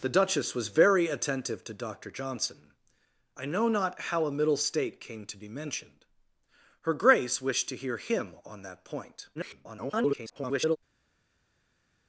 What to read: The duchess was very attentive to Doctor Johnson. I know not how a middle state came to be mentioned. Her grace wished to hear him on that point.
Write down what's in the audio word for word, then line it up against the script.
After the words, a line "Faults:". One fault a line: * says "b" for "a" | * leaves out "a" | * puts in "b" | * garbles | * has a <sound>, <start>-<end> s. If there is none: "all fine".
The duchess was very attentive to Doctor Johnson. I know not how a middle state came to be mentioned. Her grace wished to hear him on that point. [garbled]
Faults:
* garbles